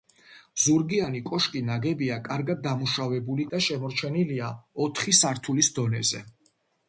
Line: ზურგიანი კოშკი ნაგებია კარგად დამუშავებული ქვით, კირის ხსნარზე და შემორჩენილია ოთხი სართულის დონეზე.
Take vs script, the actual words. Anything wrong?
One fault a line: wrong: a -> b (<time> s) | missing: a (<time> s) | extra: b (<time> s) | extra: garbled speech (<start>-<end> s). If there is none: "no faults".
missing: ქვით კირის ხსნარზე (3.5 s)